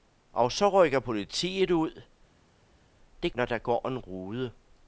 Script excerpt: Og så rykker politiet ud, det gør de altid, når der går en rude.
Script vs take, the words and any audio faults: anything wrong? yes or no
yes